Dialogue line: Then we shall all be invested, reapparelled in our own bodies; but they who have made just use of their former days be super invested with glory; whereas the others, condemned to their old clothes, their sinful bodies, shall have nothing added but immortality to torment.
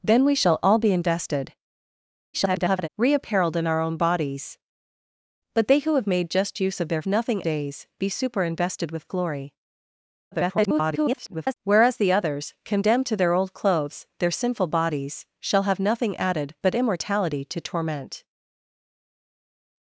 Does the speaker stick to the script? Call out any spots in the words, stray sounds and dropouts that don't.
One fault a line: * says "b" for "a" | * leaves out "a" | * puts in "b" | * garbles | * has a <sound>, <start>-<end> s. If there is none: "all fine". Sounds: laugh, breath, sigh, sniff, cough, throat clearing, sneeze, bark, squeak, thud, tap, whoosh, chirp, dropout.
* garbles
* says "nothing" for "former"
* garbles